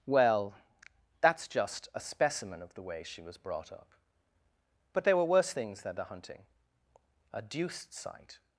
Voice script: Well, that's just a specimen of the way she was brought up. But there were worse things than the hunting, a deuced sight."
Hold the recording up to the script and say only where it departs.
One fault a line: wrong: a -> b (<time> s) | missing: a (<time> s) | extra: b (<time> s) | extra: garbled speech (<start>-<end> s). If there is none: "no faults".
no faults